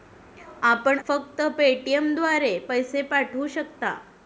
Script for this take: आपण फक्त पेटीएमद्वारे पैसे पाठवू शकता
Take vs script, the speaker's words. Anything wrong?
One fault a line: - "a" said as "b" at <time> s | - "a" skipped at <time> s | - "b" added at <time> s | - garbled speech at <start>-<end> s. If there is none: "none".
none